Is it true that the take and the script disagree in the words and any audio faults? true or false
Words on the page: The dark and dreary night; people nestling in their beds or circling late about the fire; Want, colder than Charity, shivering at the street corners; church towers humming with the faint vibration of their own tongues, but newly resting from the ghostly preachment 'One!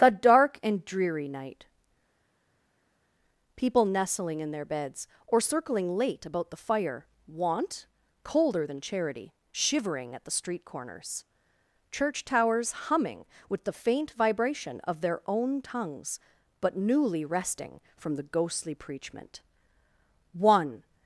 false